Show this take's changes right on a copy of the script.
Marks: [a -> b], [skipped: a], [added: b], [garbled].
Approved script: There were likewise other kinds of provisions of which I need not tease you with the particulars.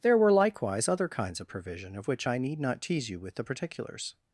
There were likewise other kinds of [provisions -> provision] of which I need not tease you with the particulars.